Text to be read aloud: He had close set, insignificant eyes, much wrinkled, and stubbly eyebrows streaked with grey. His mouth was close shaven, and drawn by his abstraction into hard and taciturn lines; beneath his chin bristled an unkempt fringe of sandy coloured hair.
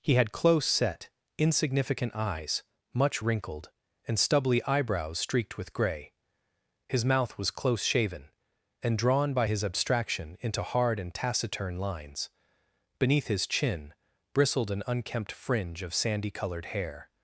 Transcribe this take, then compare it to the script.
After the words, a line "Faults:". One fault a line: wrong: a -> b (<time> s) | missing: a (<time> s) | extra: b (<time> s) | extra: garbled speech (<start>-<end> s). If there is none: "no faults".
He had close set, insignificant eyes, much wrinkled, and stubbly eyebrows streaked with grey. His mouth was close shaven, and drawn by his abstraction into hard and taciturn lines; beneath his chin bristled an unkempt fringe of sandy coloured hair.
Faults:
no faults